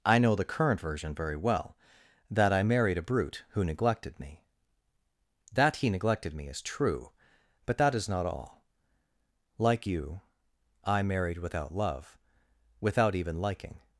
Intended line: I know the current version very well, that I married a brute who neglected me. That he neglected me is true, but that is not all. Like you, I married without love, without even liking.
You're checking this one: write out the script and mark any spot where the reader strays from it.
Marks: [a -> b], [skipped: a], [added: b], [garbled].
I know the current version very well, that I married a brute who neglected me. That he neglected me is true, but that is not all. Like you, I married without love, without even liking.